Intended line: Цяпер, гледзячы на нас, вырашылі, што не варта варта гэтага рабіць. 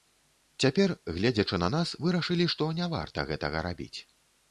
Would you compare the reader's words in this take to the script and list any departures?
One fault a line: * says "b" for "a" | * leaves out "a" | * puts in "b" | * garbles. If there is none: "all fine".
* leaves out "варта"